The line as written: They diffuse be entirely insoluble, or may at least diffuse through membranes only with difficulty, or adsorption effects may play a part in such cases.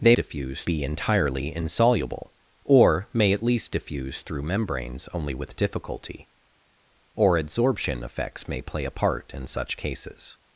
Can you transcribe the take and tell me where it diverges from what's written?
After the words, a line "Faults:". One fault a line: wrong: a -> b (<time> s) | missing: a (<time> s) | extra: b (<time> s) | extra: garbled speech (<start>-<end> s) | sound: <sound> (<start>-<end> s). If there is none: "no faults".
They diffuse be entirely insoluble, or may at least diffuse through membranes only with difficulty, or adsorption effects may play a part in such cases.
Faults:
no faults